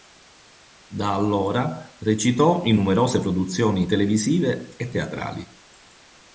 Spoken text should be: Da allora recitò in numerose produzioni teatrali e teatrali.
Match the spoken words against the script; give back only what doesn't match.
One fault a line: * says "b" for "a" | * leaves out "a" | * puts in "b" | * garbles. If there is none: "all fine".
* says "televisive" for "teatrali"